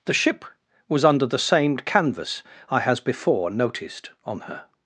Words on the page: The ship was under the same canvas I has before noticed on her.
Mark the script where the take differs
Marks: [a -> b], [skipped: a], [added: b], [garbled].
The ship was under the same canvas I has before noticed on her.